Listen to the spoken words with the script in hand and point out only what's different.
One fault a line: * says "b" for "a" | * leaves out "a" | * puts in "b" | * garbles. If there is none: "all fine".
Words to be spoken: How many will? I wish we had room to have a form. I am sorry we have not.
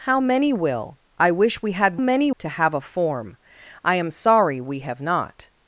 * says "many" for "room"